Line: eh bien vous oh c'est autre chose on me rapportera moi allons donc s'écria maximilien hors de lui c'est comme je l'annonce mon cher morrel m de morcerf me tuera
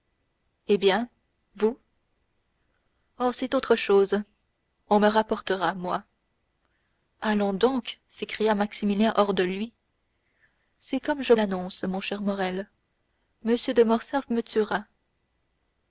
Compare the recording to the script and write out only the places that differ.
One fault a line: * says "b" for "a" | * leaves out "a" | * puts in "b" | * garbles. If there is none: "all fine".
all fine